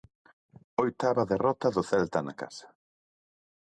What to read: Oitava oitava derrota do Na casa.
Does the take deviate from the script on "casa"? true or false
false